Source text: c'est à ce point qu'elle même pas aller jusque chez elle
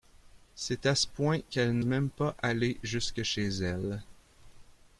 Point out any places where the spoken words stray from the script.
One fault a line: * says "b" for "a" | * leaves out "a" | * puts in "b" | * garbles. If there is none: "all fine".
all fine